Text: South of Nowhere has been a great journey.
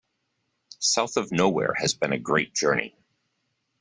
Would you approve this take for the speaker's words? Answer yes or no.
yes